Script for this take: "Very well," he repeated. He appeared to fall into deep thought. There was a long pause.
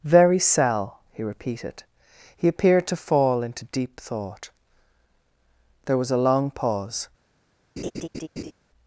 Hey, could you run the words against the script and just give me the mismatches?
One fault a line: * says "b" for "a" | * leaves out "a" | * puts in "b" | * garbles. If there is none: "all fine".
* says "cell" for "well"